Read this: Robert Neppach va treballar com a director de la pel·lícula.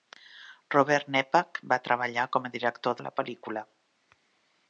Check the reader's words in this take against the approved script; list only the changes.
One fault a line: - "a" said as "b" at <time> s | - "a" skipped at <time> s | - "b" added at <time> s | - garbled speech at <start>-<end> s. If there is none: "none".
none